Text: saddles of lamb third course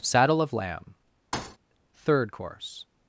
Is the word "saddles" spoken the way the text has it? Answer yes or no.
no